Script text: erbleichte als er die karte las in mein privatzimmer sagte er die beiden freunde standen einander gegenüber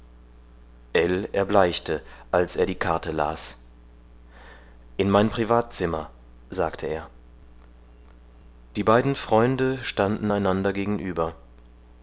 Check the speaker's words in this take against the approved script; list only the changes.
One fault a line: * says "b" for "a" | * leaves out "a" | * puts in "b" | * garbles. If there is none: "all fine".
all fine